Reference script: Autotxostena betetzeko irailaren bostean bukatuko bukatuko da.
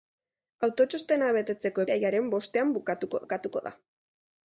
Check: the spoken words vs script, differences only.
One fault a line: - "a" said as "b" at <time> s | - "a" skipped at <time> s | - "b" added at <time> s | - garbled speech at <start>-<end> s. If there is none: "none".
none